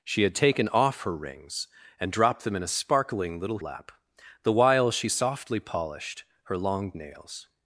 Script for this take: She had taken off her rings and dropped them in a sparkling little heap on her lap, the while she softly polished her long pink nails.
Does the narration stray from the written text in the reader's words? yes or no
yes